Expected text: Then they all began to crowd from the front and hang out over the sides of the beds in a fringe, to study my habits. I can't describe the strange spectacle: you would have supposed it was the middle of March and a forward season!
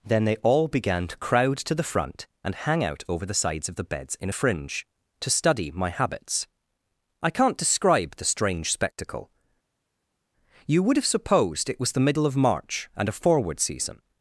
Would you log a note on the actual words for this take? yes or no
yes